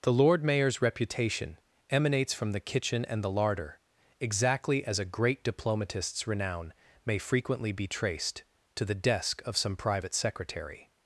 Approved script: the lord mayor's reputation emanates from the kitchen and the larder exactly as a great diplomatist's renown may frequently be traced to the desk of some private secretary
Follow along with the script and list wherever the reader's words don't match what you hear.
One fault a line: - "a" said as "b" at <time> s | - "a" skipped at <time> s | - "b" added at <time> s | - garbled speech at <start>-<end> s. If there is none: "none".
none